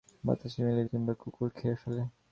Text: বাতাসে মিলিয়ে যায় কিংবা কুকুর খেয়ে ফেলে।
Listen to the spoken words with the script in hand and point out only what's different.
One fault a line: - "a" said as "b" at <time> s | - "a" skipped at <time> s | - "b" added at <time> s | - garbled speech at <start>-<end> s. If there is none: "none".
- "যায়" skipped at 0.9 s